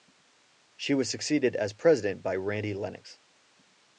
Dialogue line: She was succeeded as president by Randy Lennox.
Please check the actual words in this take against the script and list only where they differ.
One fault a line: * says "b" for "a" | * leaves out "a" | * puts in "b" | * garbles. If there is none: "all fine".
all fine